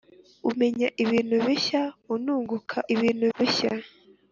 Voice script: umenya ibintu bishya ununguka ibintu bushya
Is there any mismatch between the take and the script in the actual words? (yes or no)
no